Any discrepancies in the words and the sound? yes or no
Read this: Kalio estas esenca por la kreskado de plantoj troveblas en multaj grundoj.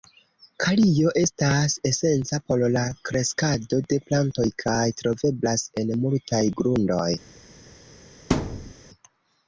yes